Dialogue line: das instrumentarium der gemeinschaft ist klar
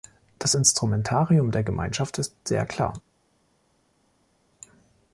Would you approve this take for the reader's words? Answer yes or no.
no